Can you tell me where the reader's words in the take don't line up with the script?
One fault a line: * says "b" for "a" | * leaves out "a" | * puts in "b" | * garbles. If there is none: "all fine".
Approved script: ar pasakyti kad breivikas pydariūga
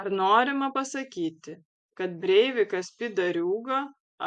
* puts in "norima"